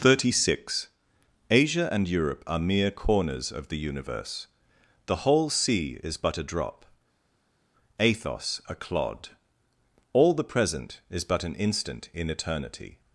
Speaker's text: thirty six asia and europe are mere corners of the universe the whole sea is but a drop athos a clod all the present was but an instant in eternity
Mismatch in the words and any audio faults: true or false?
true